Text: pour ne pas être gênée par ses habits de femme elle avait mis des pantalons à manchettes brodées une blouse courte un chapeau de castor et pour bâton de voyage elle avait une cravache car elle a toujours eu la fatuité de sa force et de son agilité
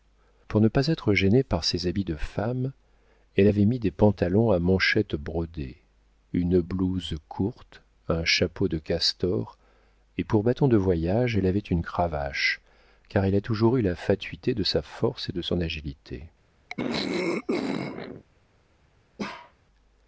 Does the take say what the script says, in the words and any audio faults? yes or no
no